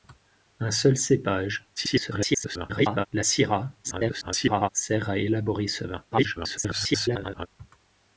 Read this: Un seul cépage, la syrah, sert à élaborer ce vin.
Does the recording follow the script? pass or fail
fail